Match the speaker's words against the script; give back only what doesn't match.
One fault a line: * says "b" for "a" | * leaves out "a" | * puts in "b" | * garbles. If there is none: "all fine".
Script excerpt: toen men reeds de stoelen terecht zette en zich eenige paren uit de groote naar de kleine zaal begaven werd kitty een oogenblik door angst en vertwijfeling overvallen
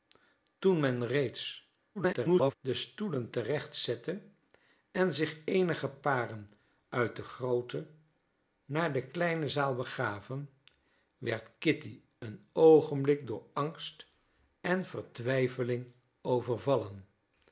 * garbles